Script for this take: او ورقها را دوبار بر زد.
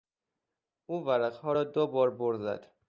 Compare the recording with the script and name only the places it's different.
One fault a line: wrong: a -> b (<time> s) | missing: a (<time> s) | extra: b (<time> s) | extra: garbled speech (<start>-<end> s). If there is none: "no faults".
no faults